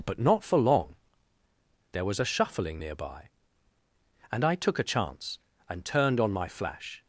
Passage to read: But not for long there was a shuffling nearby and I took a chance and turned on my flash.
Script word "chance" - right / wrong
right